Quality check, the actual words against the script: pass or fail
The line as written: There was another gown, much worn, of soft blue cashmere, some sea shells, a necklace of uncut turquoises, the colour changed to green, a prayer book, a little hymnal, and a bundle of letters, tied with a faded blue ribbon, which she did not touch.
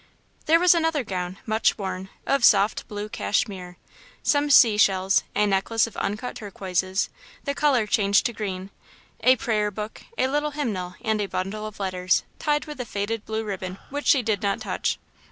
pass